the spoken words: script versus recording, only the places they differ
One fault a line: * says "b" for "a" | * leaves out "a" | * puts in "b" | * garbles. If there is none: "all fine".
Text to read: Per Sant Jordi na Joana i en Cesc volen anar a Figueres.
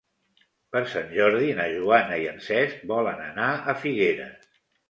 all fine